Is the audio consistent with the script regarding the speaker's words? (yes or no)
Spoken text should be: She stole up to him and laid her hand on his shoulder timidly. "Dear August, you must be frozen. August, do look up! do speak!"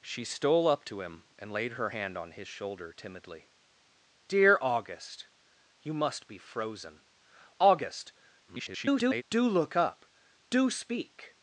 no